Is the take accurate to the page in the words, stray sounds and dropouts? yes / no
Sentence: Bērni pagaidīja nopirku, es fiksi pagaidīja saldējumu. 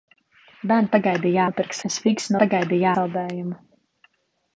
yes